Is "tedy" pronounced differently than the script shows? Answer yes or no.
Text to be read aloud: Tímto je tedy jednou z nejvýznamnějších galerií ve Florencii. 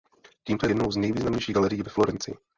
yes